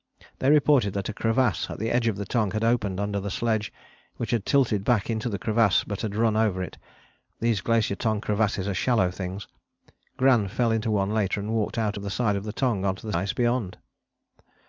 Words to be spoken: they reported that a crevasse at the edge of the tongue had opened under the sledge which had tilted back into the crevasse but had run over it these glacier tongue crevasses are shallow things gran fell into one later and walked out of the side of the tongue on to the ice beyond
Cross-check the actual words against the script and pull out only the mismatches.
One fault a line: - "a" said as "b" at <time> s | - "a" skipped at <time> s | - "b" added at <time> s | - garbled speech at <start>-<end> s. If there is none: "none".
none